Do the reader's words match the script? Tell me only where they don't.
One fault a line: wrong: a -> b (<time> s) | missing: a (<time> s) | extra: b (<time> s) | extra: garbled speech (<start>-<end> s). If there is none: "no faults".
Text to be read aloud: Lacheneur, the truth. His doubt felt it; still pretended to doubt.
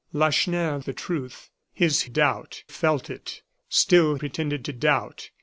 no faults